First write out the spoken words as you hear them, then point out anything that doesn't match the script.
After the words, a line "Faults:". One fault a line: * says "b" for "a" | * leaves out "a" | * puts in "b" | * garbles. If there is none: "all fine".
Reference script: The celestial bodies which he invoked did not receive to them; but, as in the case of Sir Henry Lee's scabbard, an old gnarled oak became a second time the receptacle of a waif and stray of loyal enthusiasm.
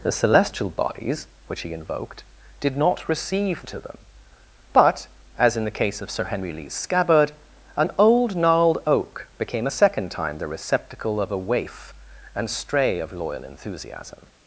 The celestial bodies which he invoked did not receive to them; but, as in the case of Sir Henry Lee's scabbard, an old gnarled oak became a second time the receptacle of a waif and stray of loyal enthusiasm.
Faults:
all fine